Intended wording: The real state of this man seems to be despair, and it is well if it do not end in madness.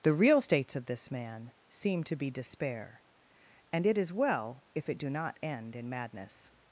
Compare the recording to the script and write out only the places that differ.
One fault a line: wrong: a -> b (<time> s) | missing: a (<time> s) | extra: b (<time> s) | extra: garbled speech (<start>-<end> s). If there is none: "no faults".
wrong: state -> states (0.4 s)
wrong: seems -> seem (1.7 s)